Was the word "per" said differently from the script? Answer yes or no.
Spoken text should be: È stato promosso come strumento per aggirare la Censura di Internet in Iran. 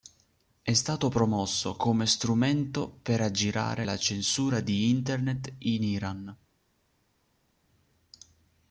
no